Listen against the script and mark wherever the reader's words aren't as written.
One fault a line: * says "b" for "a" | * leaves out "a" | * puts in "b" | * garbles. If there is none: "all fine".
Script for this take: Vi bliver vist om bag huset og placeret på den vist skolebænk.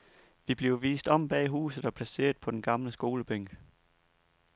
* says "gamle" for "vist"